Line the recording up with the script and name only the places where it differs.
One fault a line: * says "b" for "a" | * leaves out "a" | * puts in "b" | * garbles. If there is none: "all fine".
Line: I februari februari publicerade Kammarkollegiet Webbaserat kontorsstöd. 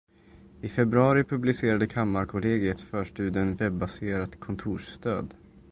* leaves out "februari"
* puts in "förstudien"